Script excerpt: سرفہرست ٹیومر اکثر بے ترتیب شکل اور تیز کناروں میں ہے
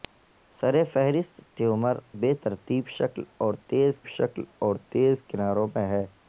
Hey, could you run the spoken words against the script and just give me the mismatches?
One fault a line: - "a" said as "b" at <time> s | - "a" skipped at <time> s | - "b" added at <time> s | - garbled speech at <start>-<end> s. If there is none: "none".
- "اکثر" skipped at 1.9 s
- "شکل اور تیز" added at 4.1 s